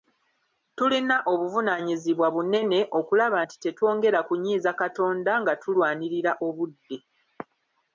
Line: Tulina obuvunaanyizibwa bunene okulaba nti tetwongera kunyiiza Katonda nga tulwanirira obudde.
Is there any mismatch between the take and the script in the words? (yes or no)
no